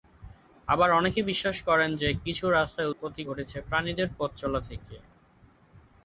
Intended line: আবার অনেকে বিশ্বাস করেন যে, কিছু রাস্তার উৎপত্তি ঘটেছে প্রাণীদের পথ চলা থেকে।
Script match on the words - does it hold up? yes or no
yes